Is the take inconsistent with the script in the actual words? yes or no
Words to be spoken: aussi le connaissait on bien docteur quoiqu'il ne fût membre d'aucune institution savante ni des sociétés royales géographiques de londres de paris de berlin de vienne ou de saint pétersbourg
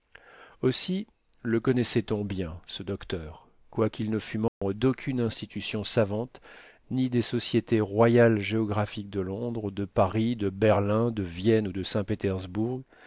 yes